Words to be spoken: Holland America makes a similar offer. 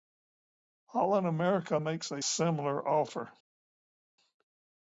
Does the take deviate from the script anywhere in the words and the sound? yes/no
no